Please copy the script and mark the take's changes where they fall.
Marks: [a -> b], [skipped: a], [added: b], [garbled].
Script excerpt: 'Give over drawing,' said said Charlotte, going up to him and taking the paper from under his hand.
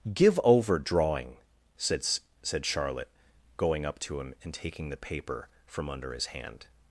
'Give over drawing,' said said Charlotte, going up to him and taking the paper from under his hand.